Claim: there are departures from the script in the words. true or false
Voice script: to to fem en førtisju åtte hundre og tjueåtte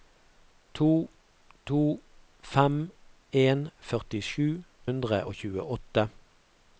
true